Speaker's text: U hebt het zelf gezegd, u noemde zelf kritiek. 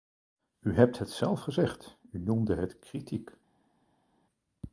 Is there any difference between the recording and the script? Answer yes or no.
yes